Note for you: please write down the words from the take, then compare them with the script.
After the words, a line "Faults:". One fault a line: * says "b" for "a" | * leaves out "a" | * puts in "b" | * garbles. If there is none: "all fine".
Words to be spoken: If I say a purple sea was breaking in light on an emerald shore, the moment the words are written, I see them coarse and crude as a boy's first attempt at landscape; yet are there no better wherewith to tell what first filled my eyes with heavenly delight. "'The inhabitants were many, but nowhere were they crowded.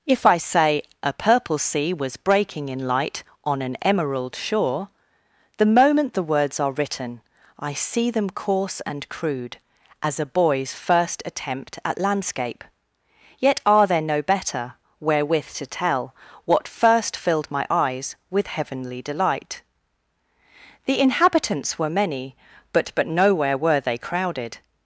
If I say a purple sea was breaking in light on an emerald shore, the moment the words are written, I see them coarse and crude as a boy's first attempt at landscape; yet are there no better wherewith to tell what first filled my eyes with heavenly delight. "'The inhabitants were many, but but nowhere were they crowded.
Faults:
* puts in "but"